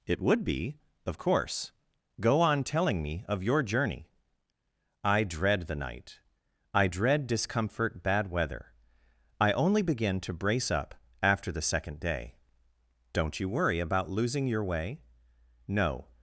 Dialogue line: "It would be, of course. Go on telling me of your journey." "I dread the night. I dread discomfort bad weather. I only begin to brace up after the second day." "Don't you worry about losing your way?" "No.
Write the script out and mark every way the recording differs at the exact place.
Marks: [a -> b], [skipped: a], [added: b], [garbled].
"It would be, of course. Go on telling me of your journey." "I dread the night. I dread discomfort bad weather. I only begin to brace up after the second day." "Don't you worry about losing your way?" "No.